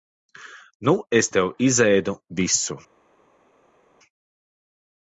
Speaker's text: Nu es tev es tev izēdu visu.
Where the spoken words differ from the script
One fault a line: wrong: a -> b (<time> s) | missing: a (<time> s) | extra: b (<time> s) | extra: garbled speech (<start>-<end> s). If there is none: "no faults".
missing: es tev (1.5 s)